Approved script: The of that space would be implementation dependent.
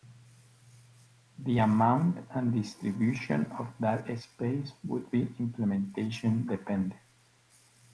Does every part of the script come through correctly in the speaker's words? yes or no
no